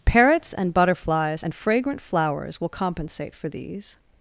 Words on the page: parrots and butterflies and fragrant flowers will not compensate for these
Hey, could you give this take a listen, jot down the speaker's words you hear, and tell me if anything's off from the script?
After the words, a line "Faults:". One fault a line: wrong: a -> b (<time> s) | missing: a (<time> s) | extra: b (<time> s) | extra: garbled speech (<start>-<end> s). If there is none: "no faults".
parrots and butterflies and fragrant flowers will compensate for these
Faults:
missing: not (2.7 s)